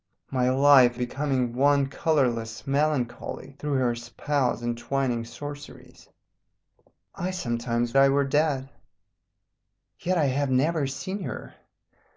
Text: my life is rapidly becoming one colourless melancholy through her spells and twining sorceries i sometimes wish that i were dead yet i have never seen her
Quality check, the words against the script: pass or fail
fail